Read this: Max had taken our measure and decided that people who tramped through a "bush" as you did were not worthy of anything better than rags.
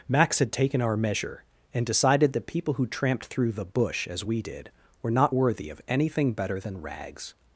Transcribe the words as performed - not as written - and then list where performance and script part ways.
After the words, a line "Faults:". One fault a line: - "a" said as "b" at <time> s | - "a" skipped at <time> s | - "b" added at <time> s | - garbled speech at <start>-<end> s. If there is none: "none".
Max had taken our measure and decided that people who tramped through the "bush" as we did were not worthy of anything better than rags.
Faults:
- "a" said as "the" at 3.5 s
- "you" said as "we" at 4.2 s